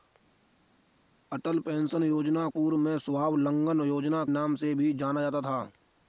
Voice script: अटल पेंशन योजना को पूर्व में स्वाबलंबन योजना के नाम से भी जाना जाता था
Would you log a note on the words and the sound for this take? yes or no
yes